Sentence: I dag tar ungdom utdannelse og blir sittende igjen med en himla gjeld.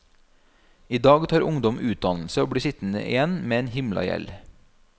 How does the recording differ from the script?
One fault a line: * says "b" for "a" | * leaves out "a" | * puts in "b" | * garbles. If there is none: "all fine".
all fine